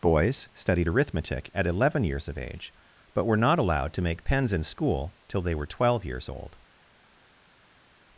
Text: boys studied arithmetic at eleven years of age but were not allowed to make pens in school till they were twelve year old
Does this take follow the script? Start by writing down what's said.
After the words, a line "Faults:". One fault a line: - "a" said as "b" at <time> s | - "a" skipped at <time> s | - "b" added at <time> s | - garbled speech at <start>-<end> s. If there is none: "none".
boys studied arithmetic at eleven years of age but were not allowed to make pens in school till they were twelve years old
Faults:
- "year" said as "years" at 6.0 s